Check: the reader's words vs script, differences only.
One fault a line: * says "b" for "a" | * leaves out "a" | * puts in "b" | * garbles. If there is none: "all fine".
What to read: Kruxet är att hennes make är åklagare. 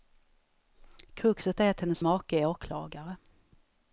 all fine